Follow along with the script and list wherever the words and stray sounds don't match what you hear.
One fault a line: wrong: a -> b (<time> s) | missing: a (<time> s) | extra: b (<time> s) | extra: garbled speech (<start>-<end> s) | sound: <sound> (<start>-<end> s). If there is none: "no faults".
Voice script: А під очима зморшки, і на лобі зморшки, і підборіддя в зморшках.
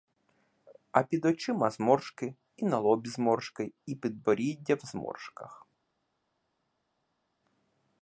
no faults